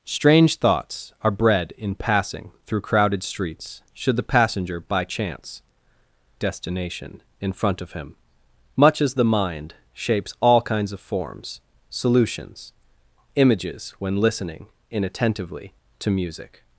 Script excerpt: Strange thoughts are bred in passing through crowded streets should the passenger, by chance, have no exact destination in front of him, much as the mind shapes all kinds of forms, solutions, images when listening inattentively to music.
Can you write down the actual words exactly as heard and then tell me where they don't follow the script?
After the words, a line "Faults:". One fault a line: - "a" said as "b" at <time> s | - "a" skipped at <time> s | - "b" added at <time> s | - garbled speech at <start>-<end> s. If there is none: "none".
Strange thoughts are bred in passing through crowded streets should the passenger, by chance, destination in front of him, much as the mind shapes all kinds of forms, solutions, images when listening inattentively to music.
Faults:
- "have no exact" skipped at 5.6 s